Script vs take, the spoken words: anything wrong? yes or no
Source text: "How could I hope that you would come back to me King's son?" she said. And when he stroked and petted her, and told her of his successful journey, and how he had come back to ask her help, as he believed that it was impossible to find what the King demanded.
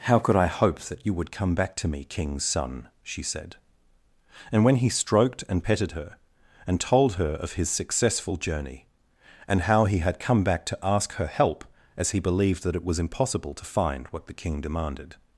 no